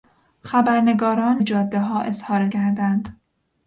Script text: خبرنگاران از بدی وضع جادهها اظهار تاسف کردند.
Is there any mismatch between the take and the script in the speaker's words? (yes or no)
yes